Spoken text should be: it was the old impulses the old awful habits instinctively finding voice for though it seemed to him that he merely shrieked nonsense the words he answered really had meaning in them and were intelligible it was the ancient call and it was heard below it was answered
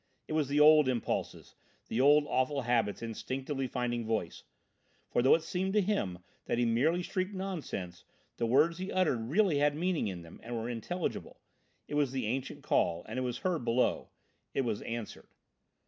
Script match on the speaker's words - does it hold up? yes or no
no